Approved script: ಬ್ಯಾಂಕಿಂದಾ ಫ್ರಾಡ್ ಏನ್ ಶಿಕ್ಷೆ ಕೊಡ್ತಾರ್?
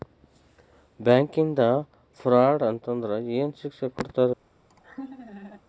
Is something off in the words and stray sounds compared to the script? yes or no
yes